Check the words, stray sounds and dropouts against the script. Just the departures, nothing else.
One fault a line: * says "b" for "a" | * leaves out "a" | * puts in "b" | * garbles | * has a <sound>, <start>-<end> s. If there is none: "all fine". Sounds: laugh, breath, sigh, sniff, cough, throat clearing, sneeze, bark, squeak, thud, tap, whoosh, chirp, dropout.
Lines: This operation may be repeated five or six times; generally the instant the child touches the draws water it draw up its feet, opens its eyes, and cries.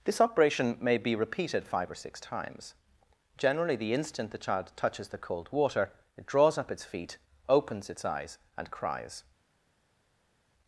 * says "cold" for "draws"
* says "draws" for "draw"